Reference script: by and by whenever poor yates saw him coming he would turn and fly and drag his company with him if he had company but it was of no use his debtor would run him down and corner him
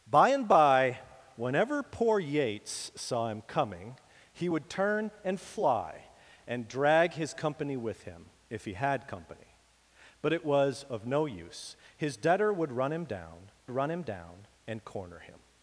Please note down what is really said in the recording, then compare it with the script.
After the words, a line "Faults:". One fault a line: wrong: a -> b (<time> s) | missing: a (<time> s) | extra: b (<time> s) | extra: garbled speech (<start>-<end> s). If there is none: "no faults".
by and by whenever poor yates saw him coming he would turn and fly and drag his company with him if he had company but it was of no use his debtor would run him down run him down and corner him
Faults:
extra: run him down (13.7 s)